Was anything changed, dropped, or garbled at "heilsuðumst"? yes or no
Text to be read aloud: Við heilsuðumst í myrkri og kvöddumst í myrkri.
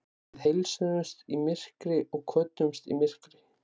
no